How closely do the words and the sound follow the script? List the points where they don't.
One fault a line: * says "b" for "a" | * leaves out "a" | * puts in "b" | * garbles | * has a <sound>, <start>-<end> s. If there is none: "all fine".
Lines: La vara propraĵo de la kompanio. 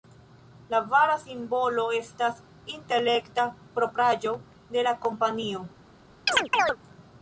* puts in "simbolo estas intelekta"
* has a chirp, 6.3-6.8 s